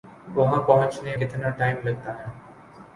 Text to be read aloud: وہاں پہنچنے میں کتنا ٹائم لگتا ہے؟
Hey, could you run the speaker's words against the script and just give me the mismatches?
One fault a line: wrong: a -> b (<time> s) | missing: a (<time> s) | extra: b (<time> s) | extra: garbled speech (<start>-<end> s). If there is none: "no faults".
missing: میں (1.1 s)